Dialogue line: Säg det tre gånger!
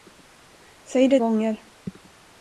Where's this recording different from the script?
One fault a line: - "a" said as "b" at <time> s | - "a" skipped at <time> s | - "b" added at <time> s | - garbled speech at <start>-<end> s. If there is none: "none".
- "tre" skipped at 1.2 s